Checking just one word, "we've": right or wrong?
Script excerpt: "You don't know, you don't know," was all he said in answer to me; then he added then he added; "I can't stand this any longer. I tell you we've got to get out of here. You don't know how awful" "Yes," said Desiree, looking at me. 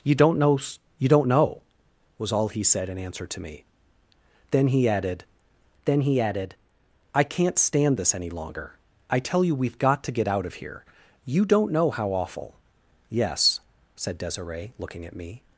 right